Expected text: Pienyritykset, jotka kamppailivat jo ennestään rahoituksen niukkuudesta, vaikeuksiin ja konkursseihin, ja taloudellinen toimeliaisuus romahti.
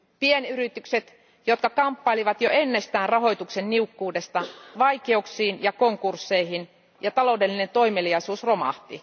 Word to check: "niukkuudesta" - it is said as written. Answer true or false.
true